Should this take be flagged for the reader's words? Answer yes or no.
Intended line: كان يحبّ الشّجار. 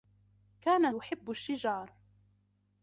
no